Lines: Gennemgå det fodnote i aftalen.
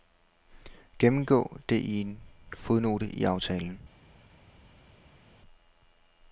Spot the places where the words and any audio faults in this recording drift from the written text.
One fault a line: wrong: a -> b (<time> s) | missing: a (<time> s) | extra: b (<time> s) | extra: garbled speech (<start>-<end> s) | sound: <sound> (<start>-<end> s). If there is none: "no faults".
extra: i en (1.8 s)